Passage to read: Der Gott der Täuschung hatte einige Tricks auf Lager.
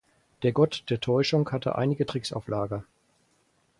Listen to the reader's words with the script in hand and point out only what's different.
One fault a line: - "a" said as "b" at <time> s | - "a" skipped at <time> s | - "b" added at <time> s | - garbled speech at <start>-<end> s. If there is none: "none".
none